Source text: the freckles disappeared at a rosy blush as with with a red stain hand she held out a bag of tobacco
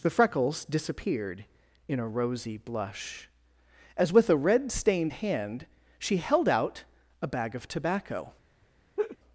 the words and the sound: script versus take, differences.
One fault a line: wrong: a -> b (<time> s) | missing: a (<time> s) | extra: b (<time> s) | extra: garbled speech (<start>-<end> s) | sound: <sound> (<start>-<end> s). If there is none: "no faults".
wrong: at -> in (1.9 s)
missing: with (4.3 s)
wrong: stain -> stained (4.7 s)
sound: laugh (9.0-9.2 s)